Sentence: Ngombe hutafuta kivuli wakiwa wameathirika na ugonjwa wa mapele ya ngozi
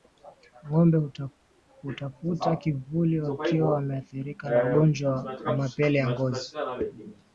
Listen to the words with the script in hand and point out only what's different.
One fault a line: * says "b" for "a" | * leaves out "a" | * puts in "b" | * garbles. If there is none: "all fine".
all fine